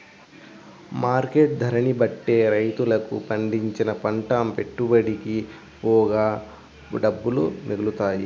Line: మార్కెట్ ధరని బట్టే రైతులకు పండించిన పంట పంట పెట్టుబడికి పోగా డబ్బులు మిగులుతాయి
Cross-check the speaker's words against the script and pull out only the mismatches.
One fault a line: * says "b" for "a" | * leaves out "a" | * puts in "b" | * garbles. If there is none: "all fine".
* leaves out "పంట"